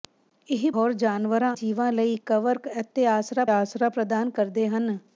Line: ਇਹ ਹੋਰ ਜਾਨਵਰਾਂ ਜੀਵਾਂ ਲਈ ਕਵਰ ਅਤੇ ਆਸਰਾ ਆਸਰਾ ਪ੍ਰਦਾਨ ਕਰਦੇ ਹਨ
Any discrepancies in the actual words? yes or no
no